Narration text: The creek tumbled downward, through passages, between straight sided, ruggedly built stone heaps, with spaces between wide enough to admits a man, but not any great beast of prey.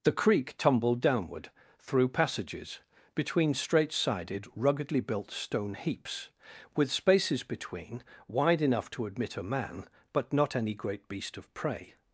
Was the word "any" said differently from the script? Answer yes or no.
no